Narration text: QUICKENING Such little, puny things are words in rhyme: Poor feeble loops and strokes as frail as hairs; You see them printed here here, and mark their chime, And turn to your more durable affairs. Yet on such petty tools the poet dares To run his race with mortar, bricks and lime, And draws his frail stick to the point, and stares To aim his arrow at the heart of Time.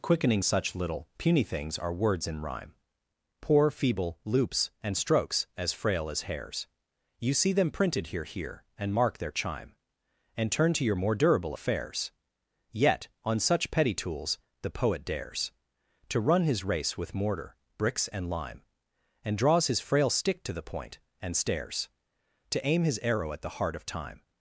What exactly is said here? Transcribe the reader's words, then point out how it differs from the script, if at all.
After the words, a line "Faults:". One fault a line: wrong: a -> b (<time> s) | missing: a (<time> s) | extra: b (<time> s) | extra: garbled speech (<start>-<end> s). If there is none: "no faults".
QUICKENING Such little, puny things are words in rhyme: Poor feeble loops and strokes as frail as hairs; You see them printed here here, and mark their chime, And turn to your more durable affairs. Yet on such petty tools the poet dares To run his race with mortar, bricks and lime, And draws his frail stick to the point, and stares To aim his arrow at the heart of Time.
Faults:
no faults